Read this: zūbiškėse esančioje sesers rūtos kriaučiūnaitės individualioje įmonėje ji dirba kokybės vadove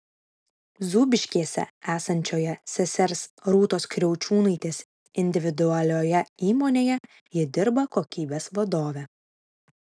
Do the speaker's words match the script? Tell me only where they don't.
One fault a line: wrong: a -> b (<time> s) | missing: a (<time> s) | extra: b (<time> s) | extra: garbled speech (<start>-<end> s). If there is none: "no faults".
no faults